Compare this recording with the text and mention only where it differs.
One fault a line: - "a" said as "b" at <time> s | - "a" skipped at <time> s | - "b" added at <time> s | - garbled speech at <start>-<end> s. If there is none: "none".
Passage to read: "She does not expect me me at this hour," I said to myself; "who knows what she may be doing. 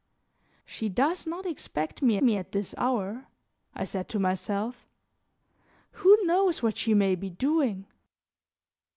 none